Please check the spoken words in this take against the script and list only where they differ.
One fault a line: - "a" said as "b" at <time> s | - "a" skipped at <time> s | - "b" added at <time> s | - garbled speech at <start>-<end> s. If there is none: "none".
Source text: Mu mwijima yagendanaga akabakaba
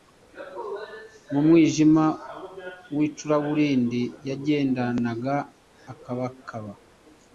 - "w'icuraburindi" added at 2.9 s